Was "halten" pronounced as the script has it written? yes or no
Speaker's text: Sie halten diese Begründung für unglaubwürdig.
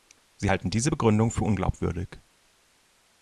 yes